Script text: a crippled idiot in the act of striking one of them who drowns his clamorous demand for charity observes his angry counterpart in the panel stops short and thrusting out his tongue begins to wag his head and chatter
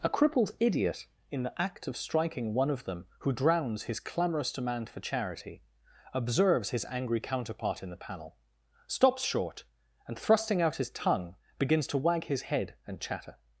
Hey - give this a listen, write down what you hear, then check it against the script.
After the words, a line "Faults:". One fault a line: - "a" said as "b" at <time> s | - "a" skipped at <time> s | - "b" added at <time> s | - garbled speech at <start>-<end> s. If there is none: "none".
a crippled idiot in the act of striking one of them who drowns his clamorous demand for charity observes his angry counterpart in the panel stops short and thrusting out his tongue begins to wag his head and chatter
Faults:
none